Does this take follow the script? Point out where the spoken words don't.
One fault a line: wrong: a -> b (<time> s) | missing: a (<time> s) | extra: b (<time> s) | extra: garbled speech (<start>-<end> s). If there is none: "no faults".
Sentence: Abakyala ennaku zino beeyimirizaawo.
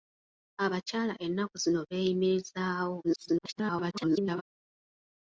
extra: garbled speech (3.0-4.4 s)